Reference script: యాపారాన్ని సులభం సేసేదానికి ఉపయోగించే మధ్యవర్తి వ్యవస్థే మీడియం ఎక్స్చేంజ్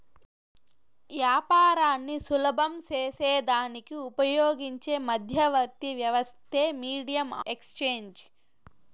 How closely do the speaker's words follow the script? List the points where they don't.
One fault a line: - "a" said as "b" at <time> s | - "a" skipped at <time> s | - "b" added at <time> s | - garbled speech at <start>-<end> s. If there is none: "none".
none